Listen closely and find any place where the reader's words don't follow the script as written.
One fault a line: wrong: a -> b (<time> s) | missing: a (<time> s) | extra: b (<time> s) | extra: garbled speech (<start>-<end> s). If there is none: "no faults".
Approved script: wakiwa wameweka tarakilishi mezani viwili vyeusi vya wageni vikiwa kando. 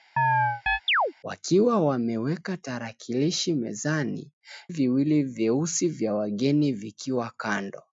no faults